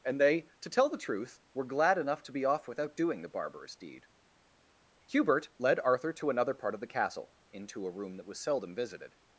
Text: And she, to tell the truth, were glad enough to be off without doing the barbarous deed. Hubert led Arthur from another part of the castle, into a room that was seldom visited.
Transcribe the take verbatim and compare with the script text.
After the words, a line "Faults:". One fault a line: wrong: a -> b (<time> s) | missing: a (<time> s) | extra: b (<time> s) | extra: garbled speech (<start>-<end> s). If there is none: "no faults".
And they, to tell the truth, were glad enough to be off without doing the barbarous deed. Hubert led Arthur to another part of the castle, into a room that was seldom visited.
Faults:
wrong: she -> they (0.2 s)
wrong: from -> to (6.1 s)